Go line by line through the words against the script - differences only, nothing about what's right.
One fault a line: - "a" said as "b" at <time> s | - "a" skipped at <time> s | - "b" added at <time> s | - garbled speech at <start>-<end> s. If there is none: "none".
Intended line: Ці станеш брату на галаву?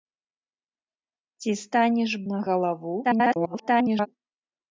- "брату" skipped at 2.1 s
- garbled speech at 3.0-4.1 s